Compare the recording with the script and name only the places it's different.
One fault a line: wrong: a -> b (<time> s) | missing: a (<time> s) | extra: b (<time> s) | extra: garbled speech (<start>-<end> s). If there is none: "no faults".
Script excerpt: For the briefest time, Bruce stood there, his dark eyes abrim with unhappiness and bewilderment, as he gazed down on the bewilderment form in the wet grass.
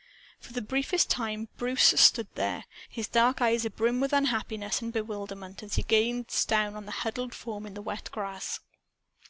wrong: bewilderment -> huddled (7.1 s)